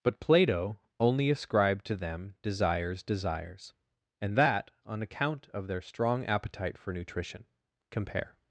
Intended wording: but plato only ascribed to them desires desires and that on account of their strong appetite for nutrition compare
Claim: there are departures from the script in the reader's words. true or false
false